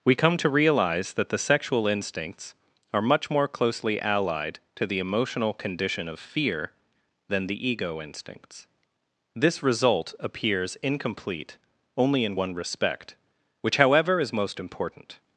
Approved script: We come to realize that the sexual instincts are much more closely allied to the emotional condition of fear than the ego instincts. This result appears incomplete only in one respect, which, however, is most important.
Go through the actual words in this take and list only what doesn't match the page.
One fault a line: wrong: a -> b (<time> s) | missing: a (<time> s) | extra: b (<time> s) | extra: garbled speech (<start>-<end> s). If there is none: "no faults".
no faults